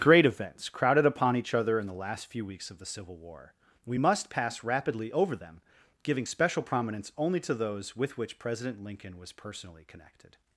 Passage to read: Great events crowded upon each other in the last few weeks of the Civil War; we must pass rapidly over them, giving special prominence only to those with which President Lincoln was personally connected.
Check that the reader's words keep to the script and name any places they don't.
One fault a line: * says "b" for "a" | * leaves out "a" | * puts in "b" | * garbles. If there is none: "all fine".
all fine